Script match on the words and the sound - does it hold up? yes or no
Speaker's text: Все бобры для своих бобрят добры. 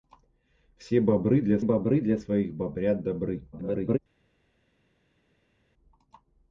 no